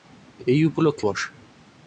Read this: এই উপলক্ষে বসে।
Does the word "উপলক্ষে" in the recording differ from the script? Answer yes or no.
no